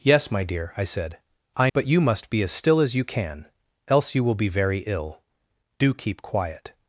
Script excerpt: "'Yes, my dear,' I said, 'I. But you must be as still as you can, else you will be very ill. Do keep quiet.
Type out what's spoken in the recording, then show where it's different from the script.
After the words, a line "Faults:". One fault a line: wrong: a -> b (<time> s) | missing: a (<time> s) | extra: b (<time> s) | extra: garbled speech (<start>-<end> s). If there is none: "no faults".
"'Yes, my dear,' I said, 'I. But you must be as still as you can, else you will be very ill. Do keep quiet.
Faults:
no faults